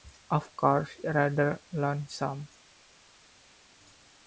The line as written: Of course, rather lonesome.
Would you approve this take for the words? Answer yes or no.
yes